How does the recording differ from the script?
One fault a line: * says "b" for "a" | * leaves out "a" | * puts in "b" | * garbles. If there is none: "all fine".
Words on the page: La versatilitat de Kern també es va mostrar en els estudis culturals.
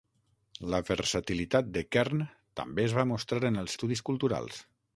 all fine